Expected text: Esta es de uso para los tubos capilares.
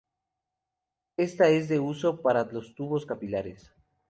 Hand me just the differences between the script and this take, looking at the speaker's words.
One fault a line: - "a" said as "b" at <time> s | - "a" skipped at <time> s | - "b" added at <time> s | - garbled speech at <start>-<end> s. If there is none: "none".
none